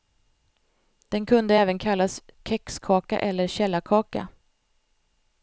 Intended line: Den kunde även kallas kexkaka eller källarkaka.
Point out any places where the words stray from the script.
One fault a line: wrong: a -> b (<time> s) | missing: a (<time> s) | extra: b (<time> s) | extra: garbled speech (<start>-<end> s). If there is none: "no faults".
no faults